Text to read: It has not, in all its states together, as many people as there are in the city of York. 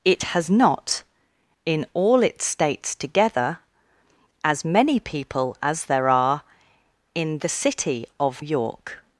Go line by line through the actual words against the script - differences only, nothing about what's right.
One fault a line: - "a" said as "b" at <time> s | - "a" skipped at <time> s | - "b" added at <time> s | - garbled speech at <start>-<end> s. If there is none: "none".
none